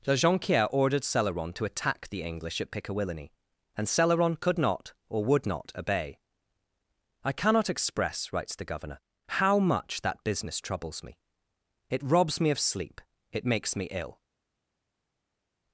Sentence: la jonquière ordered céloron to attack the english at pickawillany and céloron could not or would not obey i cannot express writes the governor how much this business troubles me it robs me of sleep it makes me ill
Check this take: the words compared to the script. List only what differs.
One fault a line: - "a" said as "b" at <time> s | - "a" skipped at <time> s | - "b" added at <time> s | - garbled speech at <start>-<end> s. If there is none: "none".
- "this" said as "that" at 10.0 s